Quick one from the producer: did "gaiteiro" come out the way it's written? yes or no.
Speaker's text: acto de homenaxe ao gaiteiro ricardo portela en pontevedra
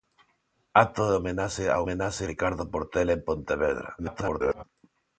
no